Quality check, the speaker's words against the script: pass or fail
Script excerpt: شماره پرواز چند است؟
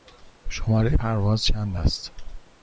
pass